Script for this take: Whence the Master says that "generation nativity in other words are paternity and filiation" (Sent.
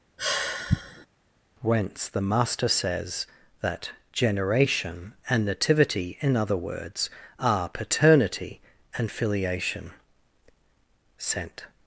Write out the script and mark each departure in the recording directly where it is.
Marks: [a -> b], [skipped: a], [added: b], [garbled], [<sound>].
[sigh] Whence the Master says that "generation [added: and] nativity in other words are paternity and filiation" (Sent.